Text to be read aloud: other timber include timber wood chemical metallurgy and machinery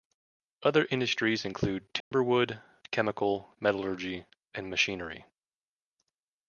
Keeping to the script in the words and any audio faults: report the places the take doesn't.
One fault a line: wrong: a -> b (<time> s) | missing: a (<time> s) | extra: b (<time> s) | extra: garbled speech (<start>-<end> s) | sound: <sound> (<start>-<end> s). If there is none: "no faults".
wrong: timber -> industries (0.9 s)
sound: dropout (2.0-2.1 s)